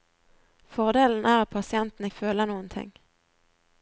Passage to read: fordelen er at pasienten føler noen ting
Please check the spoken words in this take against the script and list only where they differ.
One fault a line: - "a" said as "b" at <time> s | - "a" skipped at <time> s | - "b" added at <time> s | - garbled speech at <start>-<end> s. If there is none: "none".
none